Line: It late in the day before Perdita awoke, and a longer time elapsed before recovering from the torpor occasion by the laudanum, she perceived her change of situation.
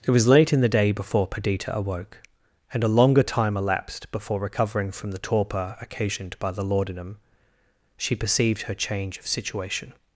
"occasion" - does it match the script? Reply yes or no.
no